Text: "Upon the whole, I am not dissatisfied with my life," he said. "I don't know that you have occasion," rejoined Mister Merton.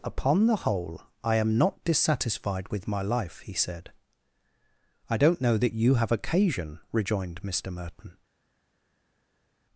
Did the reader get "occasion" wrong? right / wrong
right